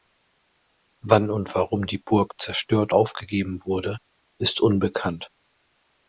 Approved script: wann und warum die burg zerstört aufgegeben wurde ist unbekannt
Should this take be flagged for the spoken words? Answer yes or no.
no